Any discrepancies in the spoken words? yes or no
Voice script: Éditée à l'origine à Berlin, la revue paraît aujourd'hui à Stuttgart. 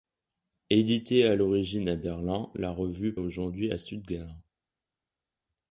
yes